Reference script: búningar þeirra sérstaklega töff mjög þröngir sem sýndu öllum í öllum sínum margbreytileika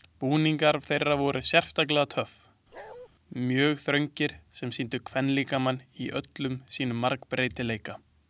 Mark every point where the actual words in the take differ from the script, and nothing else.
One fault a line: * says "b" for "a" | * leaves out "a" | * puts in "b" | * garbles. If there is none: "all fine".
* puts in "voru"
* says "kvenlíkamann" for "öllum"